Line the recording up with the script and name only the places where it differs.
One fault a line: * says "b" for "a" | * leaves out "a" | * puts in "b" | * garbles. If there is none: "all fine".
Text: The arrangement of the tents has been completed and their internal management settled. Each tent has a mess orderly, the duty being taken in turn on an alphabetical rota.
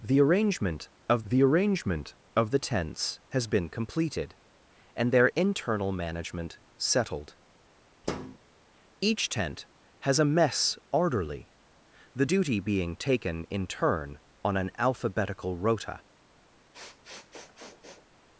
* puts in "arrangement of the"